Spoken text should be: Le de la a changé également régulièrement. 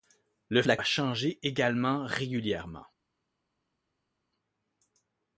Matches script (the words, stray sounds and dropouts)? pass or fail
pass